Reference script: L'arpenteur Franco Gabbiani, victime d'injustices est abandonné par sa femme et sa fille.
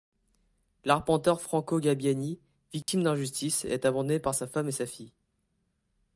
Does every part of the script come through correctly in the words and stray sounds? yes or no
no